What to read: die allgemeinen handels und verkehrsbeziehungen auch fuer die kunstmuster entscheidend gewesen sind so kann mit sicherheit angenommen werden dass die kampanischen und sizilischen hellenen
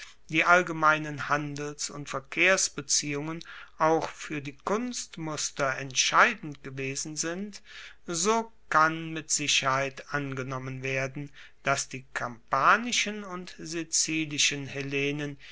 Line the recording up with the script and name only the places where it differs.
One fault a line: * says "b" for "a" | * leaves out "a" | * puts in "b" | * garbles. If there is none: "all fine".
all fine